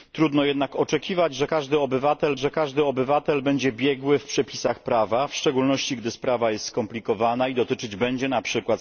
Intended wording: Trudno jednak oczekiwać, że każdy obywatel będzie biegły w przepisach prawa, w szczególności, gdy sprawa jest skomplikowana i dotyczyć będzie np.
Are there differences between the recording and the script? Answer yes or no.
yes